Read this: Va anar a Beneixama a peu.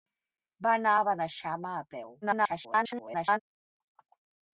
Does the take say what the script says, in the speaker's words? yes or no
no